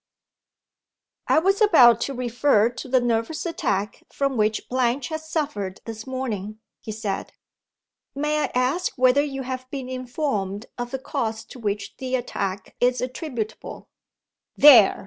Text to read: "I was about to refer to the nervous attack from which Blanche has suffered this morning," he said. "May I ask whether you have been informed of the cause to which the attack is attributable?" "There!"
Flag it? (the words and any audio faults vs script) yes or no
no